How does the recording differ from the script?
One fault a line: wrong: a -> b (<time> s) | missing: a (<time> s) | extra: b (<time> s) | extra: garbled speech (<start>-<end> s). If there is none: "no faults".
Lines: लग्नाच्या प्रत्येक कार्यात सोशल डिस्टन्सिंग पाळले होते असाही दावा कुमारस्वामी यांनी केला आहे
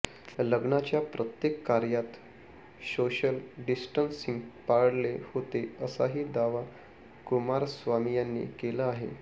no faults